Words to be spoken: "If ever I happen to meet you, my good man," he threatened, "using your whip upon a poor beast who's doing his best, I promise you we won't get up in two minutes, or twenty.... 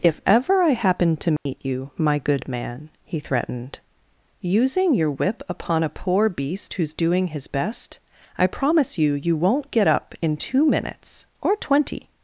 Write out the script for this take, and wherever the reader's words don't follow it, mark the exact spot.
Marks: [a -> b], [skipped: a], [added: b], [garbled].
"If ever I happen to meet you, my good man," he threatened, "using your whip upon a poor beast who's doing his best, I promise you [we -> you] won't get up in two minutes, or twenty....